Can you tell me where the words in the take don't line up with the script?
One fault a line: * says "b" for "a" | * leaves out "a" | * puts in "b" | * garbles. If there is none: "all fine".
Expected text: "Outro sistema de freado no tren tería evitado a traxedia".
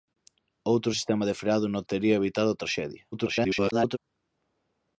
* leaves out "tren"
* garbles